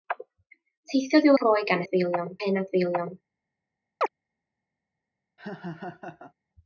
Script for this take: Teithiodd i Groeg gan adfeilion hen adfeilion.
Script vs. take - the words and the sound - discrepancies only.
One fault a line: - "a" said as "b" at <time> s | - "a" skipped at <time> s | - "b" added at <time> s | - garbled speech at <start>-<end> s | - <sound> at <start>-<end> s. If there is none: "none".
- chirp at 4.0-4.1 s
- laugh at 5.4-6.3 s